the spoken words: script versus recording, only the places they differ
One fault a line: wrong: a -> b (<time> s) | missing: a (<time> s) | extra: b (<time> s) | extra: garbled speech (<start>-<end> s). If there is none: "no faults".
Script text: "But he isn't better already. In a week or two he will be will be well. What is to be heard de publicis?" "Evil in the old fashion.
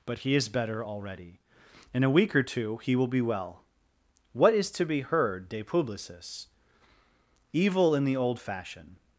wrong: isn't -> is (0.3 s)
missing: will be (3.2 s)